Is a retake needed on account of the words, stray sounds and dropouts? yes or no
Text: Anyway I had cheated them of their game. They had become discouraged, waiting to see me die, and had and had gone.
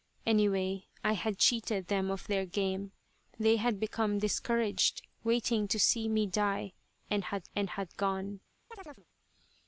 yes